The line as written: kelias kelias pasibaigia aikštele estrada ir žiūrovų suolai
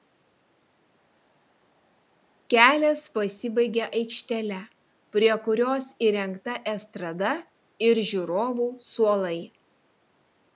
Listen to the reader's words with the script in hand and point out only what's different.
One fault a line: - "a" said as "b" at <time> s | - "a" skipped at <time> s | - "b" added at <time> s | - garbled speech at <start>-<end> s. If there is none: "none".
- "kelias" skipped at 3.0 s
- "prie kurios įrengta" added at 5.2 s